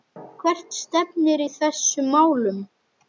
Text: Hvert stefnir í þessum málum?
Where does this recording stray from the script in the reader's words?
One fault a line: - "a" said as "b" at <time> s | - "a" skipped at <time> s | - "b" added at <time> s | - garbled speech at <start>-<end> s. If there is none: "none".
none